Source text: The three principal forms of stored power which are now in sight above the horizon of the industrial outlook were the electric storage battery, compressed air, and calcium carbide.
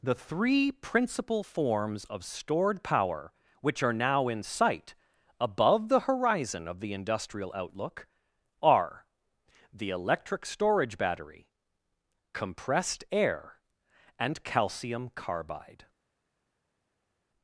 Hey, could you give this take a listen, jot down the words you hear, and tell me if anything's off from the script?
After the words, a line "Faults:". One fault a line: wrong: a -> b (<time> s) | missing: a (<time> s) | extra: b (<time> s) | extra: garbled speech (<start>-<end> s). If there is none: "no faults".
The three principal forms of stored power which are now in sight above the horizon of the industrial outlook are the electric storage battery, compressed air, and calcium carbide.
Faults:
wrong: were -> are (8.6 s)